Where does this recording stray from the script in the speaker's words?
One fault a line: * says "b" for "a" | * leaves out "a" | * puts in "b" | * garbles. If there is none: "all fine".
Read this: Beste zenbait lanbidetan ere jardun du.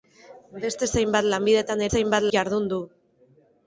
* says "zenbait" for "ere"